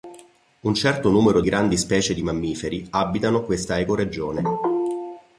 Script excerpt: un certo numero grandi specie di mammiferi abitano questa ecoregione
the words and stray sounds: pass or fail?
pass